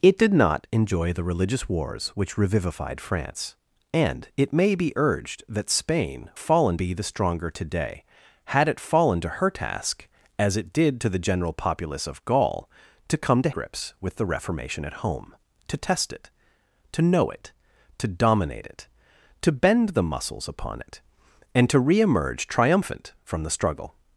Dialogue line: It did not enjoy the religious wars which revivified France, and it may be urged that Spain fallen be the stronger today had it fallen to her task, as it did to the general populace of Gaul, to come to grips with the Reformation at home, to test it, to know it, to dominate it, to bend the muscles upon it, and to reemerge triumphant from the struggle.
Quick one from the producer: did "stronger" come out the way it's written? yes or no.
yes